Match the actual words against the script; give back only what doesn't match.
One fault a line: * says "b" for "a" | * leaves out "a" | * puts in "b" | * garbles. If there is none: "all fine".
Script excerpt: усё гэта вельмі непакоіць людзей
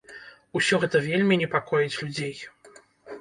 all fine